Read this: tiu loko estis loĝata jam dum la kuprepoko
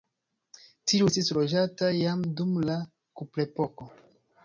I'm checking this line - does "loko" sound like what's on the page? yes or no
no